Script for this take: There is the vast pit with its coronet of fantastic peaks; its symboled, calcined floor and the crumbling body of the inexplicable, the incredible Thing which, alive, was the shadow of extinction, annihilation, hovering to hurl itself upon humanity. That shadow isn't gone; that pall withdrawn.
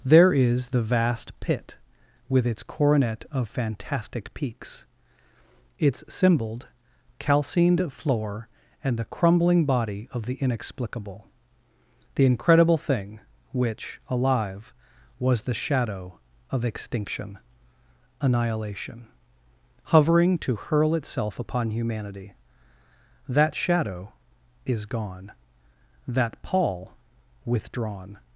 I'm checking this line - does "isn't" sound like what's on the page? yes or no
no